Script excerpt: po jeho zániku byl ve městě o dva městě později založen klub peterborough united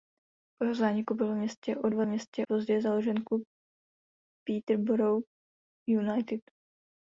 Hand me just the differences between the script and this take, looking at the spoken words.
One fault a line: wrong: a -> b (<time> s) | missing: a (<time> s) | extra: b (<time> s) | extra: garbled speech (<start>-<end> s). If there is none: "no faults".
no faults